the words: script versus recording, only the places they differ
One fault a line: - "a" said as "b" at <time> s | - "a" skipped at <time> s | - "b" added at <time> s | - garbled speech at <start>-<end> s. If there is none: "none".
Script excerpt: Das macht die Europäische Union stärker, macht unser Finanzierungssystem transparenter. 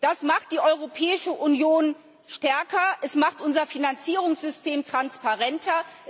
- "es" added at 3.0 s